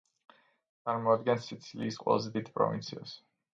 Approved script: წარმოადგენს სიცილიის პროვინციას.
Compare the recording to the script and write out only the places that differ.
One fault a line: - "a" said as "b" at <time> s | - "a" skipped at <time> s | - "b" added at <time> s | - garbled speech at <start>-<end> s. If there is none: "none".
- "ყველაზე დიდ" added at 2.0 s